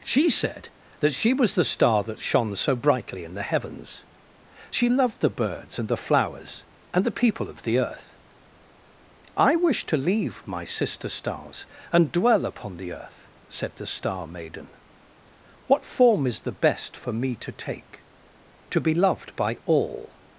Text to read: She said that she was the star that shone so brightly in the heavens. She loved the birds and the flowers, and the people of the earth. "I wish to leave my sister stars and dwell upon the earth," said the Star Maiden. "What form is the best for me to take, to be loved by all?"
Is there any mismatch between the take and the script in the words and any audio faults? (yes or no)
no